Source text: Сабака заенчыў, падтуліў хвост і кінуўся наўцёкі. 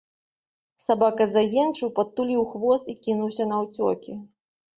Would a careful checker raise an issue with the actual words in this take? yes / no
no